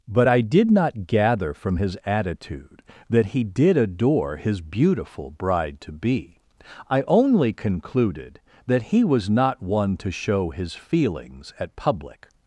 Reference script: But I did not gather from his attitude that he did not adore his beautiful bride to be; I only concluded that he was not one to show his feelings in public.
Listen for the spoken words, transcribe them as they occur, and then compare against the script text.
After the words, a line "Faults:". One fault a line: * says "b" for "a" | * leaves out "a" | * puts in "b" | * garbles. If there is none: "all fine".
But I did not gather from his attitude that he did adore his beautiful bride to be; I only concluded that he was not one to show his feelings at public.
Faults:
* leaves out "not"
* says "at" for "in"